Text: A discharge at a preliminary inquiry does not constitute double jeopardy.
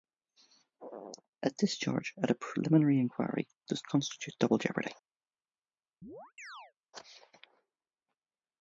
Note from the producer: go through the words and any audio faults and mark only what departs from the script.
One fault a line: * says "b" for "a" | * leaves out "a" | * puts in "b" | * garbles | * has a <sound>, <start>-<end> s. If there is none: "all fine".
* leaves out "not"
* has a chirp, 6.0-6.7 s